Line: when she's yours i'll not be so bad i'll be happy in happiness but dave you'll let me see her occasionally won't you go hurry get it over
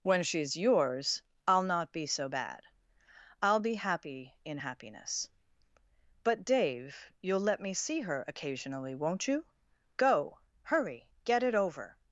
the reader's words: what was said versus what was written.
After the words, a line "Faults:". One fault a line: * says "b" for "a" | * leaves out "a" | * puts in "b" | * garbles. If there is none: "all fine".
when she's yours i'll not be so bad i'll be happy in happiness but dave you'll let me see her occasionally won't you go hurry get it over
Faults:
all fine